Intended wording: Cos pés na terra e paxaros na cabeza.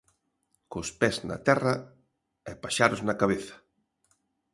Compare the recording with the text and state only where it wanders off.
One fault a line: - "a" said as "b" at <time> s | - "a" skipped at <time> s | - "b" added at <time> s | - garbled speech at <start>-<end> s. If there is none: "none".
none